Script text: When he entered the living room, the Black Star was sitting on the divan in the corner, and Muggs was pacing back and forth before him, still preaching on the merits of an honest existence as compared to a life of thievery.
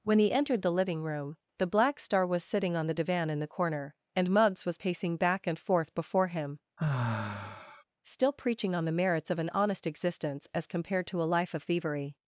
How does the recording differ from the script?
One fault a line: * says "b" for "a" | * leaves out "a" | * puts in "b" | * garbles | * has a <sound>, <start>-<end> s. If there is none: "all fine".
* has a sigh, 6.8-7.8 s